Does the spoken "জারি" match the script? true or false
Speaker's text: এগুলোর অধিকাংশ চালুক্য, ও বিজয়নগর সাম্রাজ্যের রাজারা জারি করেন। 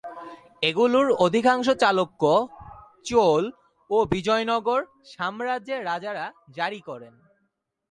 true